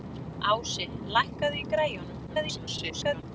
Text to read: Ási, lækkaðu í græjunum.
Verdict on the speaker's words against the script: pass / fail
fail